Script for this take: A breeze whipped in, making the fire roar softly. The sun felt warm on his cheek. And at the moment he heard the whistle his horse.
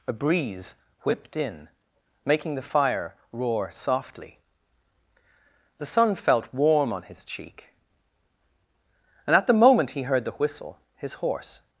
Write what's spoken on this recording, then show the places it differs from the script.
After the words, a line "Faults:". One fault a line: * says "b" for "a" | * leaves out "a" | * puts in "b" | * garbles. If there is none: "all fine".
A breeze whipped in, making the fire roar softly. The sun felt warm on his cheek. And at the moment he heard the whistle his horse.
Faults:
all fine